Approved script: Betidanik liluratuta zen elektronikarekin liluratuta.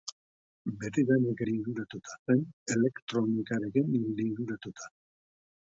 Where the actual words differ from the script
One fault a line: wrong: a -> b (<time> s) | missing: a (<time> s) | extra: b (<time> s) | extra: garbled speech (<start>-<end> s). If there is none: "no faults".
no faults